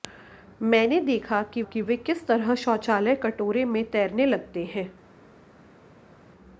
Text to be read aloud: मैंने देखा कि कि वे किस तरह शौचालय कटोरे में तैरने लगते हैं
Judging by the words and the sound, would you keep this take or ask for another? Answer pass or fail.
pass